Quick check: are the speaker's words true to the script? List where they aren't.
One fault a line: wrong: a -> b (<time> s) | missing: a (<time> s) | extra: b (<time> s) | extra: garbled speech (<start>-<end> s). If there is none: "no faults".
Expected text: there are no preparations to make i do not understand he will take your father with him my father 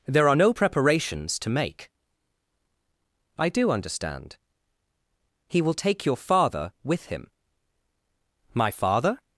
missing: not (3.7 s)